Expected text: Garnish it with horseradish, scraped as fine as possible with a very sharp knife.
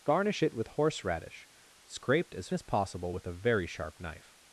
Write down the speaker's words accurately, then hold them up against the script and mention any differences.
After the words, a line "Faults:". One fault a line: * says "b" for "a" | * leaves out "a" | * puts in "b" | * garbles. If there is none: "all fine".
Garnish it with horseradish, scraped as as possible with a very sharp knife.
Faults:
* leaves out "fine"